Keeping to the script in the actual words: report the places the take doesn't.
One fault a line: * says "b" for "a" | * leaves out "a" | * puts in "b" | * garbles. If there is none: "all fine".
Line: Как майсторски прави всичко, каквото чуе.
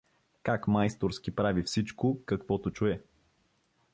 all fine